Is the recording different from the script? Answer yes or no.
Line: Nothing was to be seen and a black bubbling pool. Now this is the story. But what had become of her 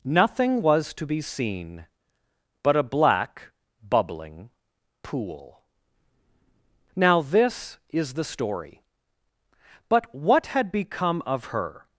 yes